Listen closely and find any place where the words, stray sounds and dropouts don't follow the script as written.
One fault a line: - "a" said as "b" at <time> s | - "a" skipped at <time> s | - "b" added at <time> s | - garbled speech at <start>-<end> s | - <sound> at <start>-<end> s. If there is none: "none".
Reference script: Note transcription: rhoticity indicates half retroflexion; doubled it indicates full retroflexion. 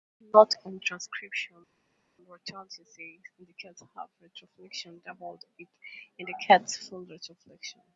- "on" added at 0.7 s